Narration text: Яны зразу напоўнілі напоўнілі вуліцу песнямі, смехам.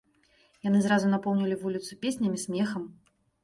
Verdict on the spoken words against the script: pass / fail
fail